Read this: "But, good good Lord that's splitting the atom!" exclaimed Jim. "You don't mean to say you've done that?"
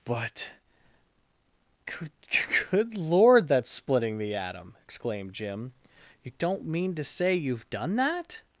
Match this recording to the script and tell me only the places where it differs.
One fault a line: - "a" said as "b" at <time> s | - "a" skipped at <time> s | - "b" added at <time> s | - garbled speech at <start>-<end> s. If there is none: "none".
none